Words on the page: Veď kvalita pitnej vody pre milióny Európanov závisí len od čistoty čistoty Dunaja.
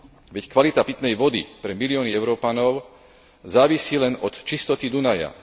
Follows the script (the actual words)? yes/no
no